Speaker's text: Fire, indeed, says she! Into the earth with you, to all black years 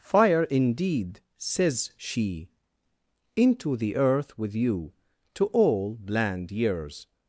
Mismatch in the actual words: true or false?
true